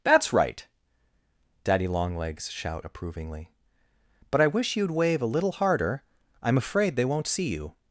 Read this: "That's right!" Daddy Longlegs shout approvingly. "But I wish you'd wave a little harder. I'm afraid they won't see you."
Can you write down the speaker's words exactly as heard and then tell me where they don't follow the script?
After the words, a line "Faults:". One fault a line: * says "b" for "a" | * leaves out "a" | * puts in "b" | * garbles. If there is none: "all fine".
"That's right!" Daddy Longlegs shout approvingly. "But I wish you'd wave a little harder. I'm afraid they won't see you."
Faults:
all fine